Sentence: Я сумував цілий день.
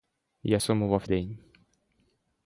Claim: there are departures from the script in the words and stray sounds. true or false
true